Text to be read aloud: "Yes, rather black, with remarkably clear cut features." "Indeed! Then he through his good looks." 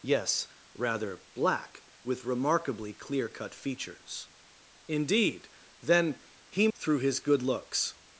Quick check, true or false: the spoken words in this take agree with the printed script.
true